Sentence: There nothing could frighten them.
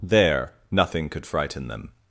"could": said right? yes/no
yes